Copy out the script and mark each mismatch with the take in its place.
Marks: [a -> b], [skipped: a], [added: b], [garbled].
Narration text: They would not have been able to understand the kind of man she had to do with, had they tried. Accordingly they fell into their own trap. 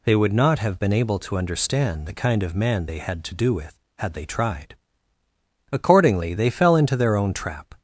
They would not have been able to understand the kind of man [she -> they] had to do with, had they tried. Accordingly they fell into their own trap.